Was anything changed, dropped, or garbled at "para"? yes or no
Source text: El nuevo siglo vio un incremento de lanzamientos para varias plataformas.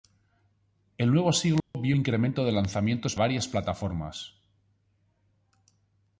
yes